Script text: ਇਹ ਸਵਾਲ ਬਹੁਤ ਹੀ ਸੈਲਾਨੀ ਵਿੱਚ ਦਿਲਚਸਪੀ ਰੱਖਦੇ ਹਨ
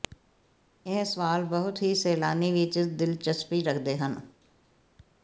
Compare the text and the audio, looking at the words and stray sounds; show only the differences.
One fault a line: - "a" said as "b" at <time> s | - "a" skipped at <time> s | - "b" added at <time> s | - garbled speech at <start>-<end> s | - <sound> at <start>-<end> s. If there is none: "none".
none